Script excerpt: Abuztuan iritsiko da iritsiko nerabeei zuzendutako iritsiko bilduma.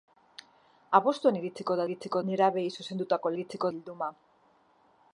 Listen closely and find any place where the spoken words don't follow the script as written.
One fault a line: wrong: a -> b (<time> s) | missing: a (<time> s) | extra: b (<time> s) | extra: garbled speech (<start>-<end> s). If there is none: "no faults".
no faults